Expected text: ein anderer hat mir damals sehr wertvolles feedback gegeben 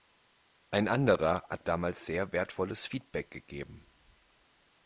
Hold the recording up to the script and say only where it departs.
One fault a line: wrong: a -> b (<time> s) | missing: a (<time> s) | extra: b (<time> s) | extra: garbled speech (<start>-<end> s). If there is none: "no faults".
missing: mir (1.7 s)